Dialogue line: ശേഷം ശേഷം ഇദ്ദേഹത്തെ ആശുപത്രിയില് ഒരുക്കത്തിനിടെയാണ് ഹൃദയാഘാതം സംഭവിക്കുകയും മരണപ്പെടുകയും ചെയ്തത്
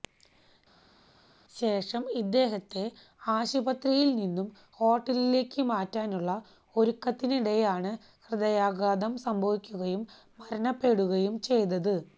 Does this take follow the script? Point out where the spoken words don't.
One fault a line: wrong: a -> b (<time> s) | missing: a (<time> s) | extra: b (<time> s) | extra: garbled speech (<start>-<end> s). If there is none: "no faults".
missing: ശേഷം (2.0 s)
extra: നിന്നും ഹോട്ടലിലേക്ക് മാറ്റാനുള്ള (4.2 s)